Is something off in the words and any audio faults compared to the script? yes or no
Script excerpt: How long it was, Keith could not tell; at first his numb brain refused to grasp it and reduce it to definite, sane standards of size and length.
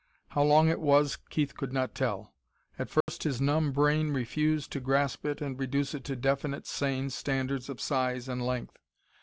yes